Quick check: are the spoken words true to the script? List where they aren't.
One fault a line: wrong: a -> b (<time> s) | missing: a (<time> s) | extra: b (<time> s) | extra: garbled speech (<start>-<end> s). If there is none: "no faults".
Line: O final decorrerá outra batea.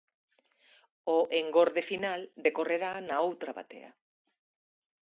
extra: engorde (1.4 s)
extra: na (3.1 s)